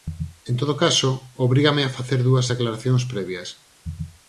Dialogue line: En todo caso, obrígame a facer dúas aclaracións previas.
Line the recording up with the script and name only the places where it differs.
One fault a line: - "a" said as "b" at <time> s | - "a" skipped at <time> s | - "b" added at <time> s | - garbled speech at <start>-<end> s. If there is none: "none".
none